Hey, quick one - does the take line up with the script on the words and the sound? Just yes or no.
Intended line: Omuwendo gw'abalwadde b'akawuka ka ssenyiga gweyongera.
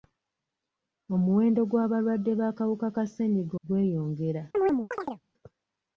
no